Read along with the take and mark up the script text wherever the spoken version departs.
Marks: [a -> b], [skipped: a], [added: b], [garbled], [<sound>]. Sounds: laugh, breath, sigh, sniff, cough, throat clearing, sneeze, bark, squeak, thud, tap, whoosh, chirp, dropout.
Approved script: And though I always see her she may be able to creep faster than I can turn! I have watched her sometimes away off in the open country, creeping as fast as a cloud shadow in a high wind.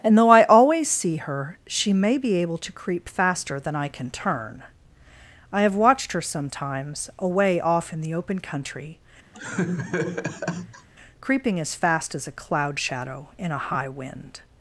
And though I always see her she may be able to creep faster than I can turn! I have watched her sometimes away off in the open country, [laugh] creeping as fast as a cloud shadow in a high wind.